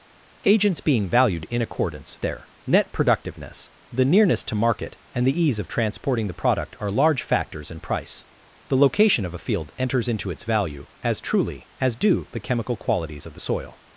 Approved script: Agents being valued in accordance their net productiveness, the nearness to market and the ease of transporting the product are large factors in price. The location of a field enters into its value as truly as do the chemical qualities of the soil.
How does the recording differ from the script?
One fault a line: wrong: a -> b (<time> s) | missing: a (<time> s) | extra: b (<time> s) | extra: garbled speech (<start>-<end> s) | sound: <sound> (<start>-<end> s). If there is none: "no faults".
no faults